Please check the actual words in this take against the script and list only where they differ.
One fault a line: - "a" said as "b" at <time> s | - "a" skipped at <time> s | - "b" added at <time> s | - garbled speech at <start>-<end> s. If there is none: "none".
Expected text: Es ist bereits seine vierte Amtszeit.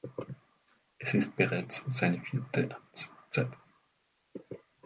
none